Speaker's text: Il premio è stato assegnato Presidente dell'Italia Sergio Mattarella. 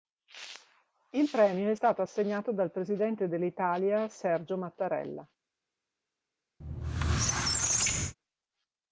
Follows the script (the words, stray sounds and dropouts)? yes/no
no